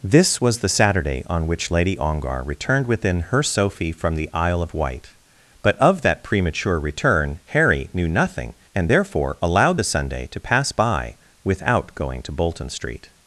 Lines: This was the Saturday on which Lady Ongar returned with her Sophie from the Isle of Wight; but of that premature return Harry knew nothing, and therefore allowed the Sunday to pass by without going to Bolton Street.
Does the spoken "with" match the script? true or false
false